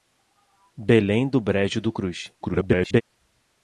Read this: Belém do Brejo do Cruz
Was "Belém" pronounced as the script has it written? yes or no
yes